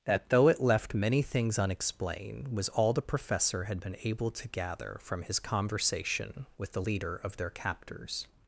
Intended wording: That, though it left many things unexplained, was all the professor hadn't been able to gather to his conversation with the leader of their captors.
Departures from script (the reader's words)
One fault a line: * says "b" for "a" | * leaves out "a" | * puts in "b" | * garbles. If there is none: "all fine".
* says "had" for "hadn't"
* says "from" for "to"